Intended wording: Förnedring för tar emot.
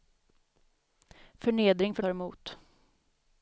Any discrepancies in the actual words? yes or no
no